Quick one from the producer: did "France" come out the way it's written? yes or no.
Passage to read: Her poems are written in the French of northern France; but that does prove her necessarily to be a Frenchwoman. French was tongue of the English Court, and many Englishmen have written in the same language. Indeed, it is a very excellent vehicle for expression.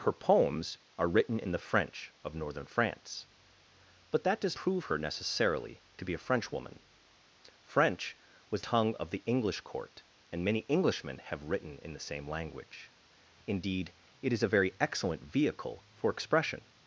yes